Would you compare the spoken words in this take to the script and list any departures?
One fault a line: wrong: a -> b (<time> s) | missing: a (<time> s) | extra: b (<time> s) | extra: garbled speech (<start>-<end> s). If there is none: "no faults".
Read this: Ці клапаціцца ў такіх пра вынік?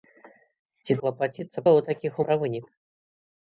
no faults